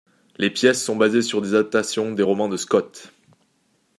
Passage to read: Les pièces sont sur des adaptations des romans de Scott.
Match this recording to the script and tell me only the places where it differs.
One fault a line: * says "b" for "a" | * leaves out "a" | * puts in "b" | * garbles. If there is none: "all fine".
* puts in "basées"